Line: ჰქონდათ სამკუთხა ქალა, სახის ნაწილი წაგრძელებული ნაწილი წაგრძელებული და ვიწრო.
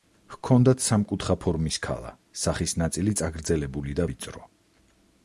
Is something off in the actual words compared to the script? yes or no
yes